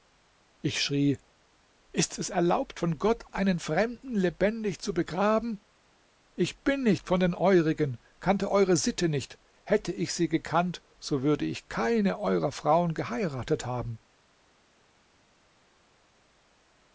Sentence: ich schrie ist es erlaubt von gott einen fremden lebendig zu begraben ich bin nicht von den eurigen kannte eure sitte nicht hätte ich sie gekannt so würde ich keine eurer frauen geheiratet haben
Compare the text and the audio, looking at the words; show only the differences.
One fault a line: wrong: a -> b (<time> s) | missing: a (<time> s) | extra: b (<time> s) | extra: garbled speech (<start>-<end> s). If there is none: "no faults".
no faults